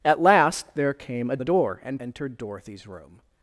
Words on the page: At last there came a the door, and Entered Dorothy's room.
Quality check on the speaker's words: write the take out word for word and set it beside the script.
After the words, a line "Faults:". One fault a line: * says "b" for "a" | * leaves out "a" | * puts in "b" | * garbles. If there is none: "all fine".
At last there came a the door, and Entered Dorothy's room.
Faults:
all fine